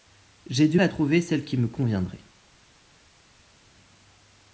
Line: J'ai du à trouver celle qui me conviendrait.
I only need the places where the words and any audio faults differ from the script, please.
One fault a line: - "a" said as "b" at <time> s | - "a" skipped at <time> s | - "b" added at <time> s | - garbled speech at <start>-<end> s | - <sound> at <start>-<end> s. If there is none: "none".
none